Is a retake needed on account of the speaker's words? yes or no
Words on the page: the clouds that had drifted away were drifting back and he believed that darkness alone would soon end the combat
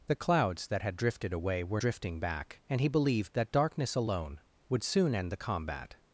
no